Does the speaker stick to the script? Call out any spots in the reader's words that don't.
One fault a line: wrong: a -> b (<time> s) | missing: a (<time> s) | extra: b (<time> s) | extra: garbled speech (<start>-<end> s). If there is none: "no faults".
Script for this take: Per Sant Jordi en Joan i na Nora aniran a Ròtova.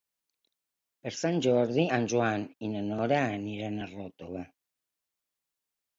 no faults